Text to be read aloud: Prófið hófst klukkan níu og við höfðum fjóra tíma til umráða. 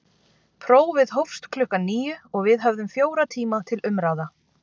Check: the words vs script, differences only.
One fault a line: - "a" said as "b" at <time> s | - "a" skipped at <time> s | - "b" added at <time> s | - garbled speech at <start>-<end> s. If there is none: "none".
none